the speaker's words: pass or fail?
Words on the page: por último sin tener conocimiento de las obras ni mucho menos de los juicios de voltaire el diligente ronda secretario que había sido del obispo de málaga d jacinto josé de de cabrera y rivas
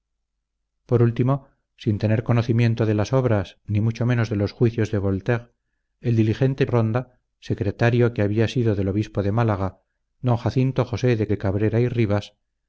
pass